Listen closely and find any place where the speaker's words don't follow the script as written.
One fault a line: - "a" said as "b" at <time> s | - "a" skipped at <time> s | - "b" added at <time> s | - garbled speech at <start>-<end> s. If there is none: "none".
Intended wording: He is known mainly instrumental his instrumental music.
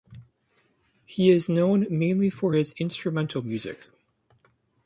- "instrumental" said as "for" at 2.3 s